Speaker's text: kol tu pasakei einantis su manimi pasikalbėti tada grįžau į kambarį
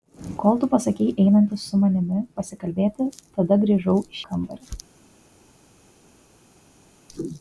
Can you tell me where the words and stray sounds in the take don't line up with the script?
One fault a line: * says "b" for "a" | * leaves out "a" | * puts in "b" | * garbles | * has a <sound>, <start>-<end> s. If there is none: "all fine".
all fine